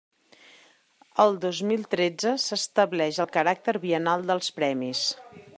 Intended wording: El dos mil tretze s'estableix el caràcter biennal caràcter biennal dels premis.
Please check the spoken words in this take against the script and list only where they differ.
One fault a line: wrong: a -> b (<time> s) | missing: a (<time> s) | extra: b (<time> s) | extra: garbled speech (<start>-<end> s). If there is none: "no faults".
missing: caràcter biennal (4.3 s)